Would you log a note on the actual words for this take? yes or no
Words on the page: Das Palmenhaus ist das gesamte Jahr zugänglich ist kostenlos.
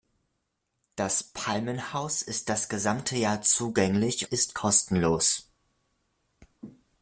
no